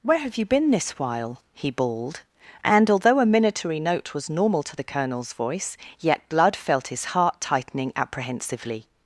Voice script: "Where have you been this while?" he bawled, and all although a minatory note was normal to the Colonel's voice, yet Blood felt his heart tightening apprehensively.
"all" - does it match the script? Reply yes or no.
no